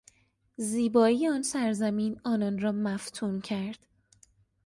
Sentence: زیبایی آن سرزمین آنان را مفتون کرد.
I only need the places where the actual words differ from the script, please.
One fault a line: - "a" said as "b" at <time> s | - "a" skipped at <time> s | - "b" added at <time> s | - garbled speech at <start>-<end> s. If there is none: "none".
none